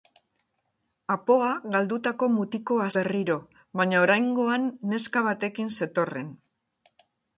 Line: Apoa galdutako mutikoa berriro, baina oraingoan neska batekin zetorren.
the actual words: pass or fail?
pass